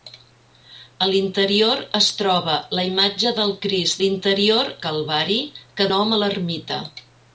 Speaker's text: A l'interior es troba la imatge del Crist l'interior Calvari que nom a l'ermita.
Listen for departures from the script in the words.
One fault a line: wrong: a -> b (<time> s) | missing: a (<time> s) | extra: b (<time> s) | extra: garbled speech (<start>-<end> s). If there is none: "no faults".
no faults